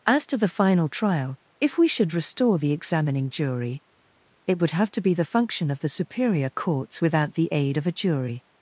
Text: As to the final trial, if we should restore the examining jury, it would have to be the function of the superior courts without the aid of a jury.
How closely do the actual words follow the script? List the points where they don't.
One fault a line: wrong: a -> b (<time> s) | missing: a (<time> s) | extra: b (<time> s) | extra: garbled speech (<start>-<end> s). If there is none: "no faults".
no faults